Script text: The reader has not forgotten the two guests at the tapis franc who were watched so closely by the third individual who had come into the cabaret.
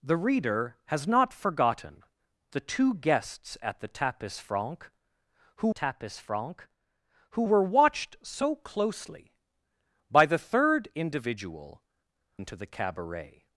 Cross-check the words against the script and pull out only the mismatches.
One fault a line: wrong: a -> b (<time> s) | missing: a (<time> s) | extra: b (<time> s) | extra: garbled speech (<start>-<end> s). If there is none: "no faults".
extra: tapis franc who (5.7 s)
missing: who had come (11.8 s)